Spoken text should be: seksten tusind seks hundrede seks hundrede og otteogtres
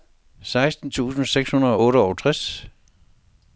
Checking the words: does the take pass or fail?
fail